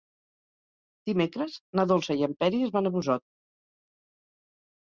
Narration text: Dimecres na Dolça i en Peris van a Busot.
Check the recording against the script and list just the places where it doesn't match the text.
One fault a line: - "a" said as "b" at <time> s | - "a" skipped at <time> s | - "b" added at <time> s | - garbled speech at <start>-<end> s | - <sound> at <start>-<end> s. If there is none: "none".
none